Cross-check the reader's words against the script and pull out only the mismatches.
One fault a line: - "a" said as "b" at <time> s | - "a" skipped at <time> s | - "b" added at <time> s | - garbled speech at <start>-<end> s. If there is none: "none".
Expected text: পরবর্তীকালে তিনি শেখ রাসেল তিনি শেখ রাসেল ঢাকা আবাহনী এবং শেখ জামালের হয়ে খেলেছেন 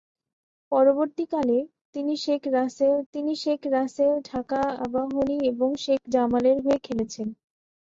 none